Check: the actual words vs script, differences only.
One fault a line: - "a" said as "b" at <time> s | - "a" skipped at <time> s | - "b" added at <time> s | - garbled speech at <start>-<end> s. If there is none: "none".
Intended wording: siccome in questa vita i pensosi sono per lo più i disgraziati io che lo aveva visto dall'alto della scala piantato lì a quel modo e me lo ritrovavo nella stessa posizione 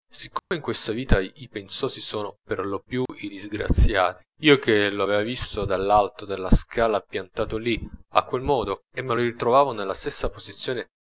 none